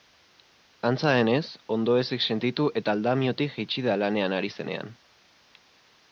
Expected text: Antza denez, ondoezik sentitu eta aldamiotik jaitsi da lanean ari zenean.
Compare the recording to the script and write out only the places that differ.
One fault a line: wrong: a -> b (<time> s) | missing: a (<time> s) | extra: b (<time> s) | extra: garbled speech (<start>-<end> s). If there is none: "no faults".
no faults